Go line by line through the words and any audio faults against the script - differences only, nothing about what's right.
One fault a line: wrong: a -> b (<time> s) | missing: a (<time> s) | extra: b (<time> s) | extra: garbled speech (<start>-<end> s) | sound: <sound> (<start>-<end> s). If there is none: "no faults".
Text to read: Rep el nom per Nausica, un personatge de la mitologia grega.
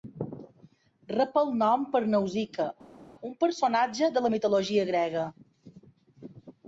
no faults